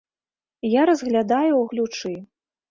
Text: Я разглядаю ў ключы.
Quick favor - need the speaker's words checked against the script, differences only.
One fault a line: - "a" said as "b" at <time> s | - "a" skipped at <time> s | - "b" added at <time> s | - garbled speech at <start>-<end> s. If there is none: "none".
none